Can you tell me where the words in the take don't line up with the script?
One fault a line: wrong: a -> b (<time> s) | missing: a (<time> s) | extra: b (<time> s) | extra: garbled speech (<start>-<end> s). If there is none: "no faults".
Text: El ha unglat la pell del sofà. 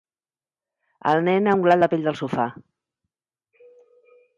extra: nen (1.3 s)